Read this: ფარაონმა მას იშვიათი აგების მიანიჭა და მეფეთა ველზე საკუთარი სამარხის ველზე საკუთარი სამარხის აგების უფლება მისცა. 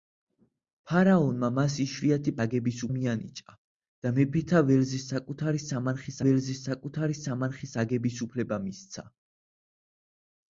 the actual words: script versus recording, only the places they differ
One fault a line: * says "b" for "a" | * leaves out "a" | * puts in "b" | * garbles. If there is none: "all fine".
all fine